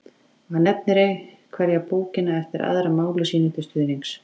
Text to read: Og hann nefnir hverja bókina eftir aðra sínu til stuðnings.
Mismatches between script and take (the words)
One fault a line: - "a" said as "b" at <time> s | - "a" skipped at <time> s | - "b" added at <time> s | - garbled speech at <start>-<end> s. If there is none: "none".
- "máli" added at 3.0 s